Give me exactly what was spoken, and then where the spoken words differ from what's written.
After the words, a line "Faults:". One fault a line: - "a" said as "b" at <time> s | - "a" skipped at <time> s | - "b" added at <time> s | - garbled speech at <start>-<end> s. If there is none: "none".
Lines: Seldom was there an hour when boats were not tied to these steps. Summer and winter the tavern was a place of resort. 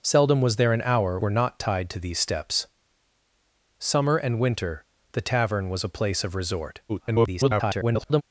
Seldom was there an hour were not tied to these steps. Summer and winter the tavern was a place of resort. [garbled]
Faults:
- "when boats" skipped at 1.2 s
- garbled speech at 6.9-8.2 s